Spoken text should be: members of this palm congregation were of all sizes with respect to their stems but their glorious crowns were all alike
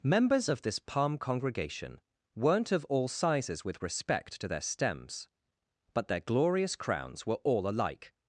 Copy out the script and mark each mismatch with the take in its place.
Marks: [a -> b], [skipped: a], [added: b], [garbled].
members of this palm congregation [were -> weren't] of all sizes with respect to their stems but their glorious crowns were all alike